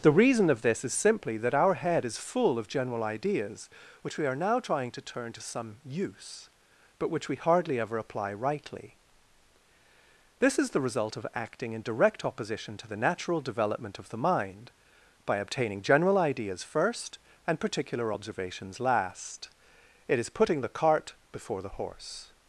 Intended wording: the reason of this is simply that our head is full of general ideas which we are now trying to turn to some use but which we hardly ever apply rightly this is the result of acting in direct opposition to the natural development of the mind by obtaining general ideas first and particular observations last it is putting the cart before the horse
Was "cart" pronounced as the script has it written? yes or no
yes